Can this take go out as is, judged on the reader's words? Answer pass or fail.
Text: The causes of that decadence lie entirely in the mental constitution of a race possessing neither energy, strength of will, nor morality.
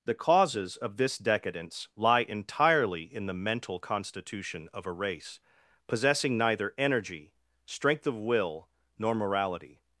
fail